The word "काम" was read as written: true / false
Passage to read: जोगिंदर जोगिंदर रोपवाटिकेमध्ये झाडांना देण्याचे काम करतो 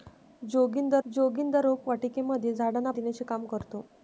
true